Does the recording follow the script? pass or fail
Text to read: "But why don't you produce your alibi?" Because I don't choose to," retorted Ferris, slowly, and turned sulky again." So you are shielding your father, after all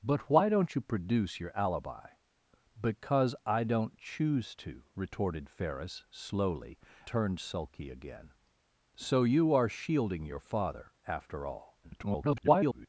fail